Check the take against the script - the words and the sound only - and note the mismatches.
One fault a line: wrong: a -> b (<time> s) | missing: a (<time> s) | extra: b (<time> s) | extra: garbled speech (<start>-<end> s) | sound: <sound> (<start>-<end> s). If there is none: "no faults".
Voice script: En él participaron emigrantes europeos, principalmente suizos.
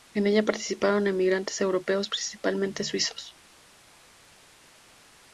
wrong: él -> ella (0.2 s)